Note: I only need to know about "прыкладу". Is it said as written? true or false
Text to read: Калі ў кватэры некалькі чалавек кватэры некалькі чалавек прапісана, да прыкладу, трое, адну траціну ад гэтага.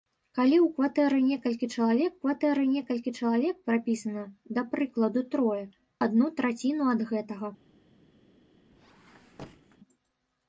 true